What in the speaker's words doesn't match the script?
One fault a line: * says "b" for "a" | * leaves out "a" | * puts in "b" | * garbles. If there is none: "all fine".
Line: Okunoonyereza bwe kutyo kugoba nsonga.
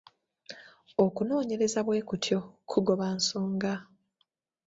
all fine